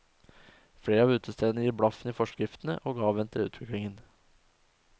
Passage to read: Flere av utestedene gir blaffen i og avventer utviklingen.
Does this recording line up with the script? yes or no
no